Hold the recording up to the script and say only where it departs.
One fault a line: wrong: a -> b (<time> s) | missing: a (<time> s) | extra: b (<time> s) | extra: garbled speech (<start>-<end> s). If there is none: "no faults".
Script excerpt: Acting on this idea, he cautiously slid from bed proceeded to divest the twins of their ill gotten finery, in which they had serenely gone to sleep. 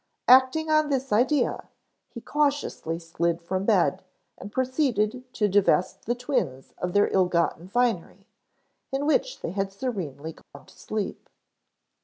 extra: and (4.4 s)